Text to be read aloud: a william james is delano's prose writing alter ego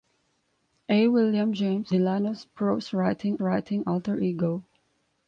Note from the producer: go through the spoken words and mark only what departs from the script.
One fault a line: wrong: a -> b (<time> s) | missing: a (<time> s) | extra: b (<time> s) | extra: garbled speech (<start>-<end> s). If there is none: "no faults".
missing: is (1.9 s)
extra: writing (3.4 s)